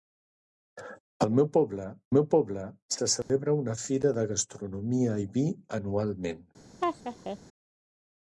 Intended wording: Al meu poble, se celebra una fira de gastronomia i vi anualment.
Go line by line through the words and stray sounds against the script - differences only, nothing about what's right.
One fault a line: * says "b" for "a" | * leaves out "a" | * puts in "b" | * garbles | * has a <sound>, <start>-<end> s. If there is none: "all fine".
* puts in "meu poble"
* has a dropout, 3.2-3.3 s
* has a laugh, 6.8-7.4 s